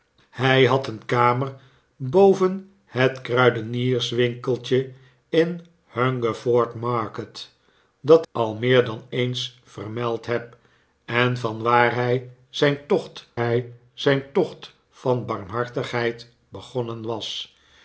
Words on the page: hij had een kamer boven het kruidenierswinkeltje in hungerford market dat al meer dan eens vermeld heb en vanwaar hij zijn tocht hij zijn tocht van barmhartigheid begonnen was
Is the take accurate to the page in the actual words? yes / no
yes